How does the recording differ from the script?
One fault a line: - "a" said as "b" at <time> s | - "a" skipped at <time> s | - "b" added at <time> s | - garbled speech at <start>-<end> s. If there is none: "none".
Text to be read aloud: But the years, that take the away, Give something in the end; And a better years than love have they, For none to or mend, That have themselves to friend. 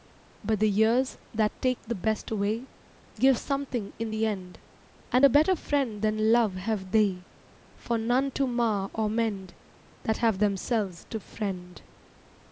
- "best" added at 1.9 s
- "years" said as "friend" at 5.5 s
- "mar" added at 8.5 s